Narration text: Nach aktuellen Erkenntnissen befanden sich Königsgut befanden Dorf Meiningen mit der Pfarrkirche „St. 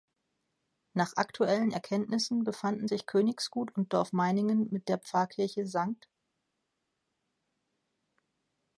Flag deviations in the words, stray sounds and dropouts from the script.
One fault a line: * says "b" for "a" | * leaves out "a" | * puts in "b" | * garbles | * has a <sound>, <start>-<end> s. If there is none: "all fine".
* says "und" for "befanden"